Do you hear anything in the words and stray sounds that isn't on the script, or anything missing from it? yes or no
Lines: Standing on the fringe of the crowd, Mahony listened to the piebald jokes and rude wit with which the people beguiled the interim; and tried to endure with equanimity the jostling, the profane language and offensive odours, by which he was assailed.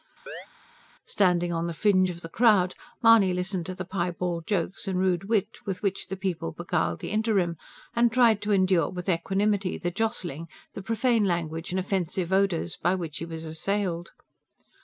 yes